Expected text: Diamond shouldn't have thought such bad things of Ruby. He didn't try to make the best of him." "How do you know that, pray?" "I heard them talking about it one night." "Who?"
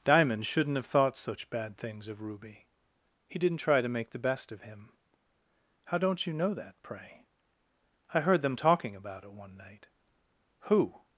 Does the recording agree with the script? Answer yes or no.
no